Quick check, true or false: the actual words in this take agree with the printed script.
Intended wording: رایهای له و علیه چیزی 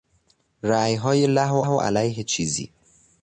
false